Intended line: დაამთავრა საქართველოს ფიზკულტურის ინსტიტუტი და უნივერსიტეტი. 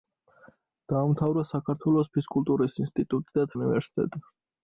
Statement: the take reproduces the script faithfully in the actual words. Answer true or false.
true